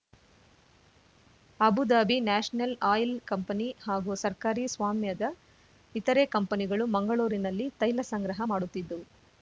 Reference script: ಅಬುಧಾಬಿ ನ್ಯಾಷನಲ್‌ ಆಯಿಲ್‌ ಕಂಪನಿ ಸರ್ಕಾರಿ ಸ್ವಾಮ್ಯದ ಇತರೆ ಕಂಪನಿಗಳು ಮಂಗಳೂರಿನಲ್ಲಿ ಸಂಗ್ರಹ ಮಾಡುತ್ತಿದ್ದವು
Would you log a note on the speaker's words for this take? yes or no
yes